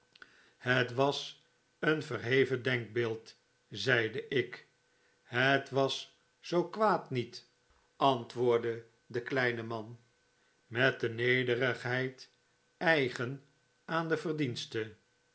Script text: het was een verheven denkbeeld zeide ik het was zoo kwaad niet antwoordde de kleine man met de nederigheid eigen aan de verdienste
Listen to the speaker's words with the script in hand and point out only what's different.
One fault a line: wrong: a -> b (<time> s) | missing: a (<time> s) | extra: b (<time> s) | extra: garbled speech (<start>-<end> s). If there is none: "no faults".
no faults